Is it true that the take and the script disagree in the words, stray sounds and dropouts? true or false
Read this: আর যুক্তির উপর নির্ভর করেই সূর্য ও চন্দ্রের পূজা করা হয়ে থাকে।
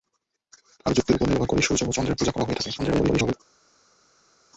true